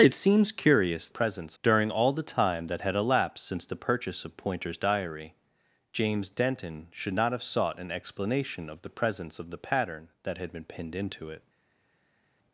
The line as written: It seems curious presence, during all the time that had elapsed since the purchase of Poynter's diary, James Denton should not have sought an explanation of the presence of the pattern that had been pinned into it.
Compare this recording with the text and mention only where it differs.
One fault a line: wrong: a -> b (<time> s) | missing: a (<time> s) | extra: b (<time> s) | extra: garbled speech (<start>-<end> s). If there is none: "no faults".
no faults